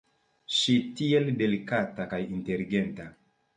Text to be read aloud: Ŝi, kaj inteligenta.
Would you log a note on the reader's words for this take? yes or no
yes